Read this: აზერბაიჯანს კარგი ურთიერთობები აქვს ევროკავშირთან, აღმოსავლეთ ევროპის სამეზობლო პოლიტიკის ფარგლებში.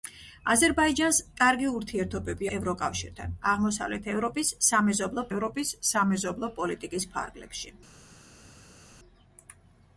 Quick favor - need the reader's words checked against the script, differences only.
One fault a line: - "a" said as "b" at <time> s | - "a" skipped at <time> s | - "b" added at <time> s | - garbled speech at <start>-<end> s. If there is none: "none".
- "აქვს" skipped at 2.5 s
- "ევროპის სამეზობლო" added at 5.3 s